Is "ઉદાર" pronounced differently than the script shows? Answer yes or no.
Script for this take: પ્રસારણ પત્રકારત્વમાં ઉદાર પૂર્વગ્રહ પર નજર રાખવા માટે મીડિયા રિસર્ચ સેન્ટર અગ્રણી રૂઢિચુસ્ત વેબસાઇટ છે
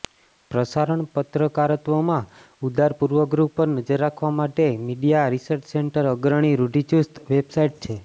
no